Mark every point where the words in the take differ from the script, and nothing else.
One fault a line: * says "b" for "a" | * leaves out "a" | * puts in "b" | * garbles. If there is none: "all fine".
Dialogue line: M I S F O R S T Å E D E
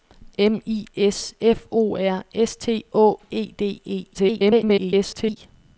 * garbles